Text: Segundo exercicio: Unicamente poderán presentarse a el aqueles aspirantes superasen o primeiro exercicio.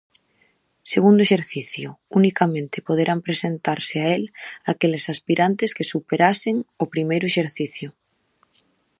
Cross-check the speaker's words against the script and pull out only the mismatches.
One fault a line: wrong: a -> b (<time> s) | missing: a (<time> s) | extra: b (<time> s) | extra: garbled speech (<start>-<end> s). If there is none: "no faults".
extra: que (5.7 s)